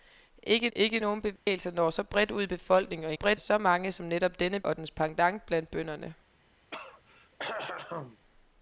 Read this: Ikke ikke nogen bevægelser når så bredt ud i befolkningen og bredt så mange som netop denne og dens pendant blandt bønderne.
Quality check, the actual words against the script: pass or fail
pass